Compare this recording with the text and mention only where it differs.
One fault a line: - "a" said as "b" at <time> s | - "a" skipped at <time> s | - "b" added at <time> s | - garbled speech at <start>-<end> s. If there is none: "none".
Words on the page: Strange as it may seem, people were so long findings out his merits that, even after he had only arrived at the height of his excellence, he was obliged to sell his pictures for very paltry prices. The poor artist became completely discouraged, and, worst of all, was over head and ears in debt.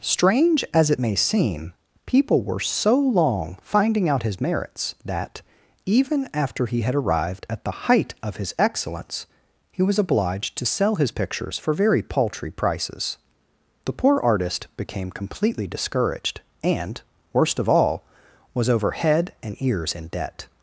- "findings" said as "finding" at 3.6 s
- "only" skipped at 6.9 s